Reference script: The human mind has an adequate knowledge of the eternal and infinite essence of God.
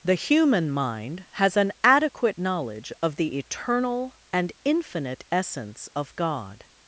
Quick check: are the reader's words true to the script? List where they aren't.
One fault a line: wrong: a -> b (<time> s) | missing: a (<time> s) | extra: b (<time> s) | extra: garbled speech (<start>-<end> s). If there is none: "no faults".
no faults